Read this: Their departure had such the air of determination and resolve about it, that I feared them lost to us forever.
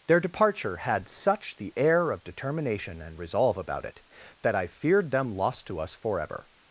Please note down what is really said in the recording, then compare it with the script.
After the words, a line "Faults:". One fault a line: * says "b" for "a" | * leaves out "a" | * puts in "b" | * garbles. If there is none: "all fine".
Their departure had such the air of determination and resolve about it, that I feared them lost to us forever.
Faults:
all fine